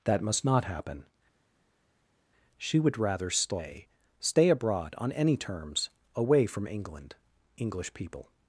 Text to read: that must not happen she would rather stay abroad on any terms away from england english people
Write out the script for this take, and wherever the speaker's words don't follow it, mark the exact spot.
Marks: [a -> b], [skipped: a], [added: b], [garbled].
that must not happen she would rather stay [added: stay] abroad on any terms away from england english people